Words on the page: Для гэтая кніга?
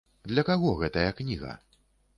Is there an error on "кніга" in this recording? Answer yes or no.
no